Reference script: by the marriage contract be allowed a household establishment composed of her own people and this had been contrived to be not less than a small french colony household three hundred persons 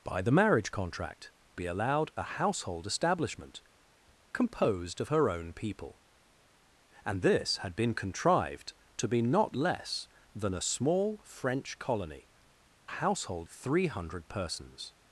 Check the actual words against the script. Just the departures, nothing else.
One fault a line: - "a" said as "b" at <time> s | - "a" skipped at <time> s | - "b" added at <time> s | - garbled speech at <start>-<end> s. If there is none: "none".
none